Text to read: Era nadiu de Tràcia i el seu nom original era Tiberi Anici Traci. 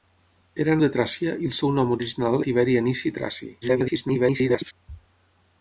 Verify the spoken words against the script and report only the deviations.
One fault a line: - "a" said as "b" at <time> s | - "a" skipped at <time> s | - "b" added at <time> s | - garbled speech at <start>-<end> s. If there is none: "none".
- "nadiu" skipped at 0.8 s
- "era" skipped at 2.4 s
- garbled speech at 3.6-4.7 s